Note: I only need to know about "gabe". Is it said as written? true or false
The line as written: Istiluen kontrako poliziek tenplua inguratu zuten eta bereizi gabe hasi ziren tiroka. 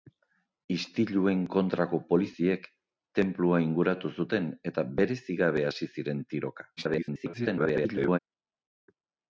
true